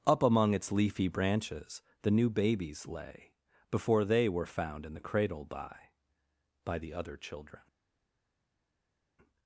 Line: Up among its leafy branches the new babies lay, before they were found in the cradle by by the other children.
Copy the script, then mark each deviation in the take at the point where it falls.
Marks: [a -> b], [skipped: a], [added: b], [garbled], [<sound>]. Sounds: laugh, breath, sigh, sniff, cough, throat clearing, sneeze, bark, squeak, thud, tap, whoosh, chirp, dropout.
Up among its leafy branches the new babies lay, before they were found in the cradle by by the other children.